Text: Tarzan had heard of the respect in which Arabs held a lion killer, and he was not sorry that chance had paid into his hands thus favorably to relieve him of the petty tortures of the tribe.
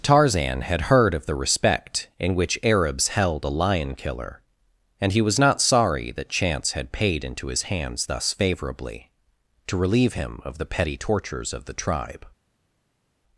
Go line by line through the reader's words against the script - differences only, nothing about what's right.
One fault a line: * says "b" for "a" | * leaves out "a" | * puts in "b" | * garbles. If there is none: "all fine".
all fine